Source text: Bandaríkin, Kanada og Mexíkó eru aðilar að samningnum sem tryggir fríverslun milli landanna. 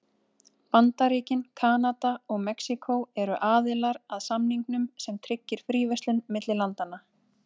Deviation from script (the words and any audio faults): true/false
false